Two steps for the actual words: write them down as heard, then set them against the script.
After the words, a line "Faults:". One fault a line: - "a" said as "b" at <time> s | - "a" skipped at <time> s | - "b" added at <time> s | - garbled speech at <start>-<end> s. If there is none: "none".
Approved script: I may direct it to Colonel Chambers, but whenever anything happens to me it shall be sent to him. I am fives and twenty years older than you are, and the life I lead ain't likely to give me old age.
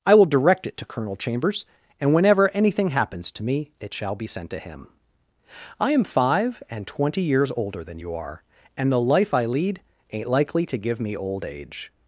I will direct it to Colonel Chambers, and whenever anything happens to me it shall be sent to him. I am five and twenty years older than you are, and the life I lead ain't likely to give me old age.
Faults:
- "may" said as "will" at 0.1 s
- "but" said as "and" at 2.0 s
- "fives" said as "five" at 6.0 s